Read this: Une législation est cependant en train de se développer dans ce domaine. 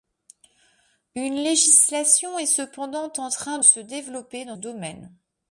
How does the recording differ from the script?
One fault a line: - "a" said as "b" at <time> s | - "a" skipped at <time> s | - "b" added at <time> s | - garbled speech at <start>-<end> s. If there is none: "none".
- "de" skipped at 3.6 s
- "ce" skipped at 4.6 s